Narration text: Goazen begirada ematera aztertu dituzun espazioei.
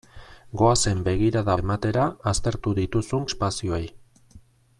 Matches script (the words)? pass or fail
pass